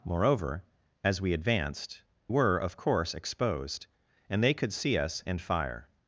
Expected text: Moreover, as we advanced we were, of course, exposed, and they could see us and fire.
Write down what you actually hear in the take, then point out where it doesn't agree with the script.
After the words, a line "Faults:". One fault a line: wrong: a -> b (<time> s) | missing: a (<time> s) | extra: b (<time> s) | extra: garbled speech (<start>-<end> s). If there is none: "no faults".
Moreover, as we advanced were, of course, exposed, and they could see us and fire.
Faults:
missing: we (2.0 s)